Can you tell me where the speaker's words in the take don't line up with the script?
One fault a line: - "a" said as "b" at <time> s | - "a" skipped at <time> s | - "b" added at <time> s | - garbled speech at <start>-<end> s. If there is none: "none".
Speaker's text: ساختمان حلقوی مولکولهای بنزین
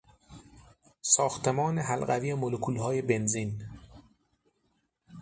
none